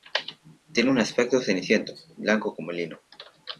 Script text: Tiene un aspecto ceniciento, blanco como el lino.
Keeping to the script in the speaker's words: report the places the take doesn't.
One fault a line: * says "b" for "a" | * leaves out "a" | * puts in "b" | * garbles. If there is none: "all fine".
all fine